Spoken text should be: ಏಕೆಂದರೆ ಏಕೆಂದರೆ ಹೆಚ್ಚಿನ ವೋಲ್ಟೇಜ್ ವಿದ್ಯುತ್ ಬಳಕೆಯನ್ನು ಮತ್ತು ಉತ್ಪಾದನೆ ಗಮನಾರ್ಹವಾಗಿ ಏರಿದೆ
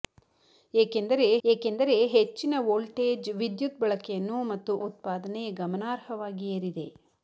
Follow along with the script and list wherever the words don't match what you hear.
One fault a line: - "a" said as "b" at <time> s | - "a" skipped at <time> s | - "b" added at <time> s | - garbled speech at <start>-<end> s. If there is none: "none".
none